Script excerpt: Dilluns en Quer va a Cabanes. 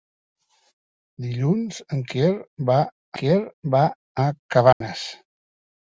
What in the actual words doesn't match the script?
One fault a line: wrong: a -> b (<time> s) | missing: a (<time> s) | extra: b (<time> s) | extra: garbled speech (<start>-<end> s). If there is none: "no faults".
extra: Quer va (3.2 s)